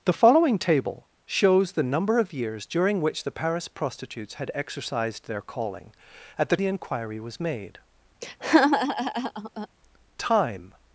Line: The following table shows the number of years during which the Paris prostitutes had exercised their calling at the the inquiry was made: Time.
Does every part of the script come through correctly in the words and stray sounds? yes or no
no